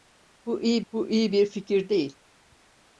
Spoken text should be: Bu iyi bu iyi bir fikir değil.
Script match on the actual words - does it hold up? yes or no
yes